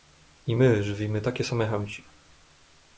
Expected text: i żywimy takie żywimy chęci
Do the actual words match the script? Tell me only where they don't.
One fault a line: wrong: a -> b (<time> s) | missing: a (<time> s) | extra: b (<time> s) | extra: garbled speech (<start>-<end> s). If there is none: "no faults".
extra: my (0.5 s)
wrong: żywimy -> same (1.4 s)